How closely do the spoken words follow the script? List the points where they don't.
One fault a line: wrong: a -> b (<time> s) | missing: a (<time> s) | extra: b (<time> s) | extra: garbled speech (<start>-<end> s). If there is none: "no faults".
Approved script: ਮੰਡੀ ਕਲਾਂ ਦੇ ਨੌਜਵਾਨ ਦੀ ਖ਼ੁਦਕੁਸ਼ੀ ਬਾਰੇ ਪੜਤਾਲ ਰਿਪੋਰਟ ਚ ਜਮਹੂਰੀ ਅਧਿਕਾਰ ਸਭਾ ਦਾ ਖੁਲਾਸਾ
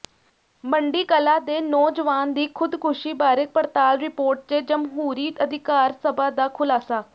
no faults